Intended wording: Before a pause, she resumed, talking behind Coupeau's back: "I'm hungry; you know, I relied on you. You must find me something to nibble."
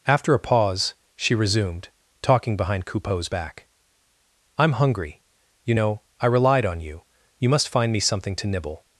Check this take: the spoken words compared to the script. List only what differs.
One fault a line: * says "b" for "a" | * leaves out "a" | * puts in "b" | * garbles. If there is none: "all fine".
* says "After" for "Before"